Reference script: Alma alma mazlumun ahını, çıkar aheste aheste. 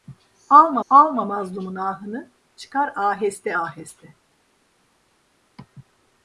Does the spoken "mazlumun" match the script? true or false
true